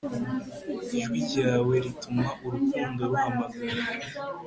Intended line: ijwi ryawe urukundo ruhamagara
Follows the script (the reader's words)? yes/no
no